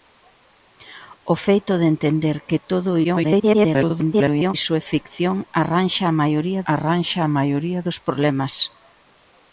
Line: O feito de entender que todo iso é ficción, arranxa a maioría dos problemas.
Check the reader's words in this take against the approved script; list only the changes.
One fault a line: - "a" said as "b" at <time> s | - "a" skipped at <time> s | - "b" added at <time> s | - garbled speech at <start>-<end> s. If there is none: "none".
- garbled speech at 3.0-4.5 s
- "arranxa a maioría" added at 6.7 s